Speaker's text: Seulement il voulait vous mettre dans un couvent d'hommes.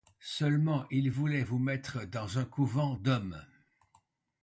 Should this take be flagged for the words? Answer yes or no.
no